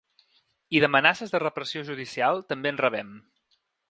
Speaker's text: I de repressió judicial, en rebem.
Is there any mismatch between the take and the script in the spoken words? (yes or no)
yes